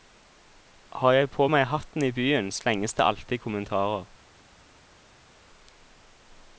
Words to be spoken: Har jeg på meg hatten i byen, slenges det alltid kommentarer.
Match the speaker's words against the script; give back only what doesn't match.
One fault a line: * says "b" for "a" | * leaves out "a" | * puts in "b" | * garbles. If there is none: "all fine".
all fine